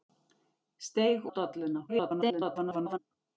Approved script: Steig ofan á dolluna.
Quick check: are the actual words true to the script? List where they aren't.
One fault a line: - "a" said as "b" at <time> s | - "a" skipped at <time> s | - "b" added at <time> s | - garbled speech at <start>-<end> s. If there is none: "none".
- "ofan" skipped at 1.3 s
- garbled speech at 1.9-3.0 s